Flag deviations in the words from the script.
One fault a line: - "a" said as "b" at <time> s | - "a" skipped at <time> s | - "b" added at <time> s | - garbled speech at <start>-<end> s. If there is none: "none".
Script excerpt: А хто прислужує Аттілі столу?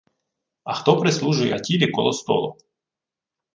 - "коло" added at 1.9 s